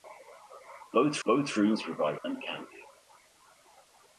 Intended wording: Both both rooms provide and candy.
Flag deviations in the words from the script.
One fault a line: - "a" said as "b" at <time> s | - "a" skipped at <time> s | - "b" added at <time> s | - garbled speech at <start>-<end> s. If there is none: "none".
none